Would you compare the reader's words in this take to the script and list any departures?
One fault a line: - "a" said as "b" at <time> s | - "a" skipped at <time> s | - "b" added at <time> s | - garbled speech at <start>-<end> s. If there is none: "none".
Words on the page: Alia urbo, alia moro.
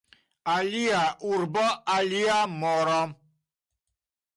none